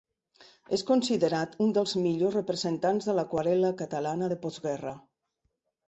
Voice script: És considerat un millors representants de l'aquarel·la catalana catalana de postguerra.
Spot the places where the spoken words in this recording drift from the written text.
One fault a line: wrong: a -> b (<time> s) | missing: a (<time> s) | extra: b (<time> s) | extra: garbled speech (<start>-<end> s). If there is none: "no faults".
extra: dels (1.8 s)
missing: catalana (4.3 s)